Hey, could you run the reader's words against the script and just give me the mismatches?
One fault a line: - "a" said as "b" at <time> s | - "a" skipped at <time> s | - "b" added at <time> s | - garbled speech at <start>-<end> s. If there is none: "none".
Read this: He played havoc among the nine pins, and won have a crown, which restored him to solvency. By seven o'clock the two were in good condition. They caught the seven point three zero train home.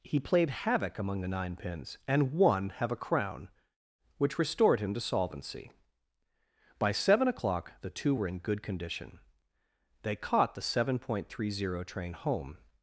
none